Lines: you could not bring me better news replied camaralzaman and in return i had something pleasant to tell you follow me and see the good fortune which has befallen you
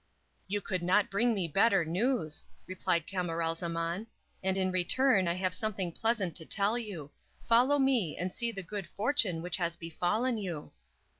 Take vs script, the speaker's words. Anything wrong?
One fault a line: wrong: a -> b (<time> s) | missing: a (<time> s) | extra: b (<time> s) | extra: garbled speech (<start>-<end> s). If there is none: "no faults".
wrong: had -> have (5.3 s)